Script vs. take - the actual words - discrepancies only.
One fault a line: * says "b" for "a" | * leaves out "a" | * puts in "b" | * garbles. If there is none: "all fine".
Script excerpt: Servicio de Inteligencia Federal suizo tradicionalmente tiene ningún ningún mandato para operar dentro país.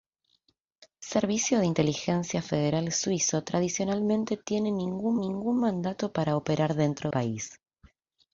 all fine